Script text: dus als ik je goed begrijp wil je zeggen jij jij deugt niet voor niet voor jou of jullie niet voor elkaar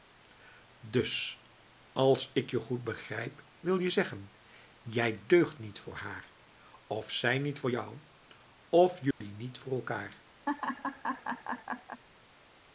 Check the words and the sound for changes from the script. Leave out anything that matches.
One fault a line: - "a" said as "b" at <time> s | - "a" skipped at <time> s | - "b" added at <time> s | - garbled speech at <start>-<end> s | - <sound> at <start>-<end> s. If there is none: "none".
- "jij" skipped at 5.2 s
- "haar of zij" added at 5.9 s
- dropout at 9.1-9.2 s
- laugh at 10.5-12.0 s